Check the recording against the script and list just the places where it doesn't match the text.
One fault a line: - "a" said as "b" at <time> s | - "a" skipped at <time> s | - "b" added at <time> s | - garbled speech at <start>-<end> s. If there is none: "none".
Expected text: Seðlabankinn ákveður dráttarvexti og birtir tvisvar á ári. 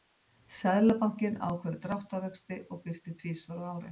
none